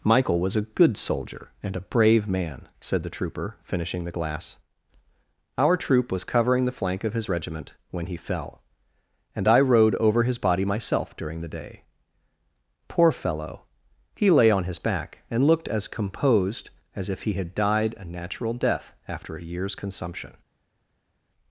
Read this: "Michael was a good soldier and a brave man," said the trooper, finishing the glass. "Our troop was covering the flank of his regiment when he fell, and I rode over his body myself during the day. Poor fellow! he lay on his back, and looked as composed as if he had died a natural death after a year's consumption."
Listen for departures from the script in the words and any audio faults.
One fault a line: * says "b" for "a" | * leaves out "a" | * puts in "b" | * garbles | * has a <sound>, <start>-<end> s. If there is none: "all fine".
all fine